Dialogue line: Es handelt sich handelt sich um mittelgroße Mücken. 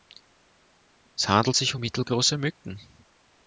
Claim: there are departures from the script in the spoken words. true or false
true